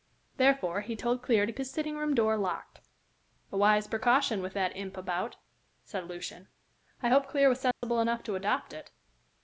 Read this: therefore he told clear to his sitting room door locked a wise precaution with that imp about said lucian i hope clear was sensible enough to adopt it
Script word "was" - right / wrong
right